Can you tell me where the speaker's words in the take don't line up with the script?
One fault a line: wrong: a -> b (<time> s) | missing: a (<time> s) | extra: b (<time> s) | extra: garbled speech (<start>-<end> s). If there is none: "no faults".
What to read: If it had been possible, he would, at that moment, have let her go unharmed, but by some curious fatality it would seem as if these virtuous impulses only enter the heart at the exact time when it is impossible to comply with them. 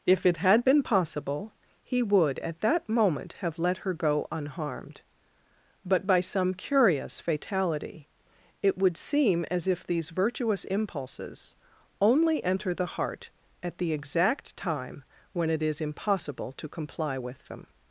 no faults